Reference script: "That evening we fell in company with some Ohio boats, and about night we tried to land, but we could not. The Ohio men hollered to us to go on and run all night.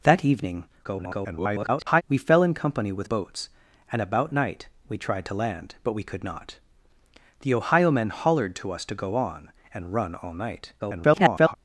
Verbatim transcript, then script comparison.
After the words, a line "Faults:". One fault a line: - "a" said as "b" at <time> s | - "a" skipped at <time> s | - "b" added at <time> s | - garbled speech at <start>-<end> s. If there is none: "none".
"That evening [garbled] we fell in company with boats, and about night we tried to land, but we could not. The Ohio men hollered to us to go on and run all night. [garbled]
Faults:
- garbled speech at 0.8-2.0 s
- "some Ohio" skipped at 3.1 s
- garbled speech at 10.8-11.5 s